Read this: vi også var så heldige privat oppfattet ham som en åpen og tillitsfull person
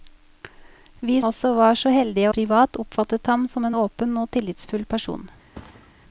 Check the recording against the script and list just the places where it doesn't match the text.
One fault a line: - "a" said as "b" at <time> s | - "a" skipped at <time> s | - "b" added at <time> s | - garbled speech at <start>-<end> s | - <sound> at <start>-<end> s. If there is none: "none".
- thud at 5.5-5.9 s